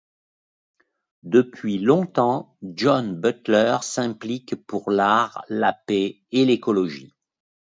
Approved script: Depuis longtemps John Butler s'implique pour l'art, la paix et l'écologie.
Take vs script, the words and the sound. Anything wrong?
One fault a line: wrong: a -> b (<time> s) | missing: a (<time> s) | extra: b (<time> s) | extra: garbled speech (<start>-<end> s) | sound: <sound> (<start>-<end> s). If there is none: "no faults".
no faults